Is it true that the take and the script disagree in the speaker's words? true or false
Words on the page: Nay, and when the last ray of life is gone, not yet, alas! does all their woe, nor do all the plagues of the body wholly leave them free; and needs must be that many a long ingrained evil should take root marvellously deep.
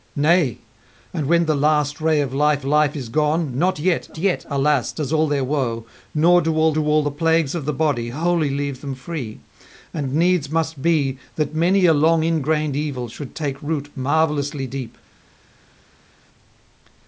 true